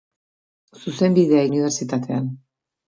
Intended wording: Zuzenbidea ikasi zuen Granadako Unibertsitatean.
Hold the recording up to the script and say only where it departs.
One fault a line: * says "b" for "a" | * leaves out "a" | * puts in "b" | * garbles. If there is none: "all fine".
* leaves out "ikasi zuen Granadako"